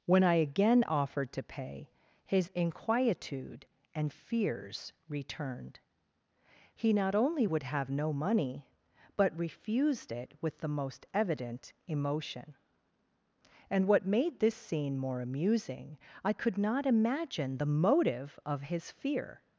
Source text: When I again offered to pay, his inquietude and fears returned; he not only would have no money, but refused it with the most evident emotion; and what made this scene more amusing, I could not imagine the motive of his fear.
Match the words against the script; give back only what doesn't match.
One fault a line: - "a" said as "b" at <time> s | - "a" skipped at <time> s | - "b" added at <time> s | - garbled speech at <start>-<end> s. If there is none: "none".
none